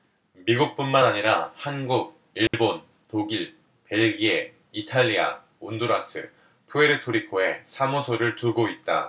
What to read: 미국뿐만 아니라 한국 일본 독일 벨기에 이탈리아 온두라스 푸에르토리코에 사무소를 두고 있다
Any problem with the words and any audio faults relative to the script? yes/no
yes